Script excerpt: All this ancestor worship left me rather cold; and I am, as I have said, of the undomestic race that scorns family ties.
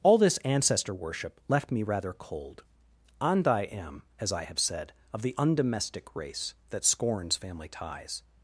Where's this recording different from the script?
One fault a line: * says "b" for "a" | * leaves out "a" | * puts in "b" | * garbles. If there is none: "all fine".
all fine